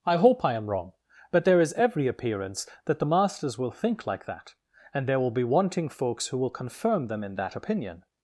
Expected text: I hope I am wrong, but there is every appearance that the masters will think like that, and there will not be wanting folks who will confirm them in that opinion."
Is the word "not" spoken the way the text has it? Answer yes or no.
no